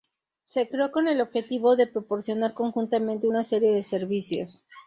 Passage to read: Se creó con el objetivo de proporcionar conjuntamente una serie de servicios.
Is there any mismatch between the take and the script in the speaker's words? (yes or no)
no